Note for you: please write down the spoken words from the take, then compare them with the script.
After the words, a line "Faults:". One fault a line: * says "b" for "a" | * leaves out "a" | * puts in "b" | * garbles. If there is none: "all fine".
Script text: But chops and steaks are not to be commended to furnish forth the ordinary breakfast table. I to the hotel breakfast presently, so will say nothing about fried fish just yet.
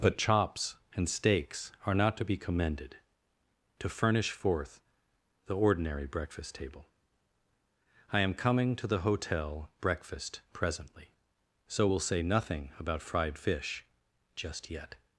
But chops and steaks are not to be commended to furnish forth the ordinary breakfast table. I am coming to the hotel breakfast presently, so will say nothing about fried fish just yet.
Faults:
* puts in "am coming"